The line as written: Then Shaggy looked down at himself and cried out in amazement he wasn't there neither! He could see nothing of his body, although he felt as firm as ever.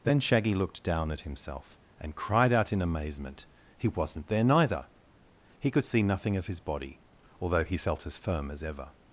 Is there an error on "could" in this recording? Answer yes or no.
no